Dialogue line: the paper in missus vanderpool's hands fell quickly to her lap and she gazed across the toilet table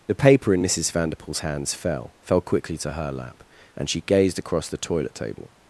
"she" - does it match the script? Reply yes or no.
yes